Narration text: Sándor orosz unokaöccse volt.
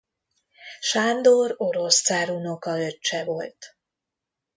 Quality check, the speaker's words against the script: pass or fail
fail